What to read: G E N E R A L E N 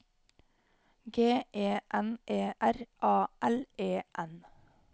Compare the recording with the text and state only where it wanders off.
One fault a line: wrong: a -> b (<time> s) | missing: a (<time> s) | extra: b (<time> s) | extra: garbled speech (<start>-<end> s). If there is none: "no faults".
no faults